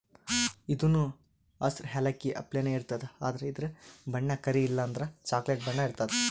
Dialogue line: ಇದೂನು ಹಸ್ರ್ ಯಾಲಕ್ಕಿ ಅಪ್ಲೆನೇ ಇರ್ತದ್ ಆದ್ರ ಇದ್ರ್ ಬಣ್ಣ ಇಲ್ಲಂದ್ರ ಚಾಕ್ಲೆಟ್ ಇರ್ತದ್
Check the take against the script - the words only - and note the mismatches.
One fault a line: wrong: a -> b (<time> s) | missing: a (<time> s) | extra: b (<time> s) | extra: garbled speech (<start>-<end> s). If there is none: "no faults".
extra: ಕರಿ (4.4 s)
extra: ಬಣ್ಣ (5.7 s)